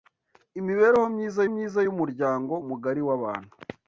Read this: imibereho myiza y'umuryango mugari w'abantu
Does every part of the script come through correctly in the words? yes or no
no